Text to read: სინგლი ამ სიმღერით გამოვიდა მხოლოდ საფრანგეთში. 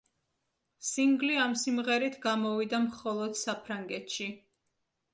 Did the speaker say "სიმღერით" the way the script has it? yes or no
yes